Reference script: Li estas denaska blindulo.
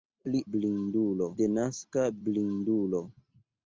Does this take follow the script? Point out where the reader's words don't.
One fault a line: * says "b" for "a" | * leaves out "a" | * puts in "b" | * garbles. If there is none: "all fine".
* says "blindulo" for "estas"